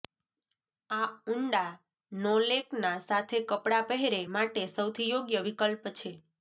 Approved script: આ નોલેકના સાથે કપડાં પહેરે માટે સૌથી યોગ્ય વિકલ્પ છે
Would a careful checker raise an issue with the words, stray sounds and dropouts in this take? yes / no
yes